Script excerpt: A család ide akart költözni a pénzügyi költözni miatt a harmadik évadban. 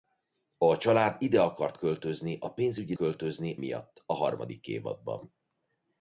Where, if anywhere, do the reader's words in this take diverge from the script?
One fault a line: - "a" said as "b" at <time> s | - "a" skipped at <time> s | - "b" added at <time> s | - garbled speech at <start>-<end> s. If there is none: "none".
none